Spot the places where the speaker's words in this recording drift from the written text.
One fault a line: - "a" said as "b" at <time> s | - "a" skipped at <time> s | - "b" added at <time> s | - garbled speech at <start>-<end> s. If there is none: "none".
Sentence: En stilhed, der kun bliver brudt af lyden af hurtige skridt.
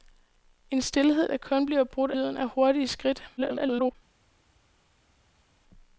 - "af" skipped at 2.1 s
- garbled speech at 3.4-3.9 s